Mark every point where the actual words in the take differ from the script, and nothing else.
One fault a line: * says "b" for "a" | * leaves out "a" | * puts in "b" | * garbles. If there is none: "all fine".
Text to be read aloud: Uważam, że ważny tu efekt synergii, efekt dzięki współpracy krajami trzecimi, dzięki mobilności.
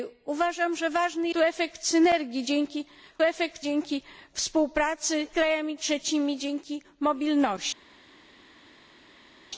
all fine